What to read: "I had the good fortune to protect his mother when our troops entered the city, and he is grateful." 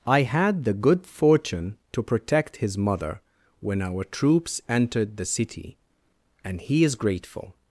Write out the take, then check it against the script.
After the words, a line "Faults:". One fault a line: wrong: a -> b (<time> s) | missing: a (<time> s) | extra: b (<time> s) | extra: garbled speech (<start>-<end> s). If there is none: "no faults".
"I had the good fortune to protect his mother when our troops entered the city, and he is grateful."
Faults:
no faults